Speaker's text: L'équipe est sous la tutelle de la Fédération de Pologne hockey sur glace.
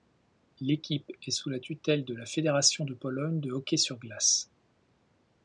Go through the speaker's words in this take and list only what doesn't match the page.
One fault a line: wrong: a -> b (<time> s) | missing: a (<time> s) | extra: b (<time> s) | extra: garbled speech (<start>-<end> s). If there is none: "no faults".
extra: de (3.4 s)